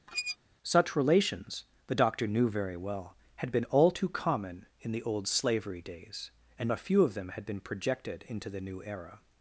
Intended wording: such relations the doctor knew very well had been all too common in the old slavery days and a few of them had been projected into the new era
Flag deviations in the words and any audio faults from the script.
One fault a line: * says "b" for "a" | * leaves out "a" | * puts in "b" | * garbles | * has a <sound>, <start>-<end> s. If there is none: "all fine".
* has a squeak, 0.1-0.4 s